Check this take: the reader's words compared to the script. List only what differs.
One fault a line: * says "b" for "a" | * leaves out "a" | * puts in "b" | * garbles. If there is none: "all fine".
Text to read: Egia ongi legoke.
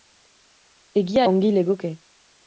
all fine